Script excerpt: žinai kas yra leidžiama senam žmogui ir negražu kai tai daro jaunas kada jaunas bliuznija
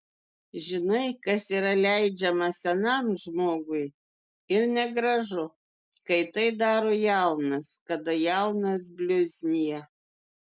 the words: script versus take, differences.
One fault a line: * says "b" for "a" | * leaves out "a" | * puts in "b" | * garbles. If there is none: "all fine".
all fine